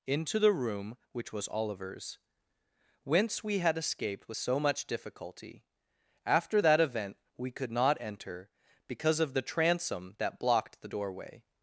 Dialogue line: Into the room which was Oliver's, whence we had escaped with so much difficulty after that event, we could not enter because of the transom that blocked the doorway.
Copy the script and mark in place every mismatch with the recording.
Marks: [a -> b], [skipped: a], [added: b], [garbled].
Into the room which was Oliver's, whence we had escaped with so much difficulty after that event, we could not enter because of the transom that blocked the doorway.